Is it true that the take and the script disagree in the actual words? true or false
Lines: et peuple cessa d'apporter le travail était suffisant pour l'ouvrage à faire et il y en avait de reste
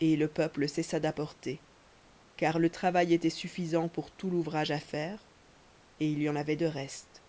true